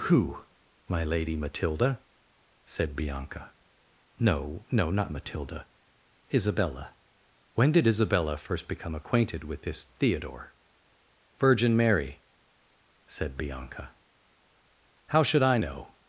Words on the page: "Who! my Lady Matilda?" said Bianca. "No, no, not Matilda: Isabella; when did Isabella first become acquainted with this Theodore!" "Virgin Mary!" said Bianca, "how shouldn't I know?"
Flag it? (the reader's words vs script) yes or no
yes